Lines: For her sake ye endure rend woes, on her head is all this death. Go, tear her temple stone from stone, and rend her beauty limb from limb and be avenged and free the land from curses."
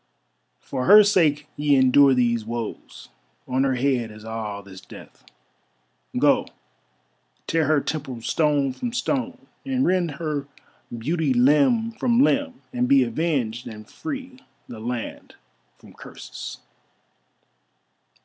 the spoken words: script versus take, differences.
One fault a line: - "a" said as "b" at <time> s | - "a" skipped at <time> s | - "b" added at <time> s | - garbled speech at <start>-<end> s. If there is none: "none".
- "rend" said as "these" at 2.1 s